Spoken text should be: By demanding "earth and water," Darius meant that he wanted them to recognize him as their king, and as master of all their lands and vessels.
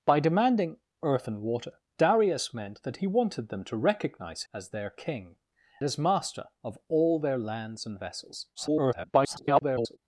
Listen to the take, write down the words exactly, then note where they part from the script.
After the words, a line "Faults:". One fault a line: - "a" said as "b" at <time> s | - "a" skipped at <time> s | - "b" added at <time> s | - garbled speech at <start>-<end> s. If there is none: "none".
By demanding "earth and water," Darius meant that he wanted them to recognize as their king, as master of all their lands and vessels. [garbled]
Faults:
- "him" skipped at 4.4 s
- "and" skipped at 5.4 s
- garbled speech at 8.5-10.0 s